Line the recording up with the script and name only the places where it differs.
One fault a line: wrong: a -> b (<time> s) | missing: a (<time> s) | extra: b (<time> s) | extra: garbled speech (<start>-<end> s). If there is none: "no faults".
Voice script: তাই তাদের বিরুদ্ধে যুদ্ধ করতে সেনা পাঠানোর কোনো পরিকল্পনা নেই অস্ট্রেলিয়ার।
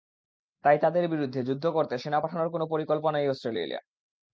no faults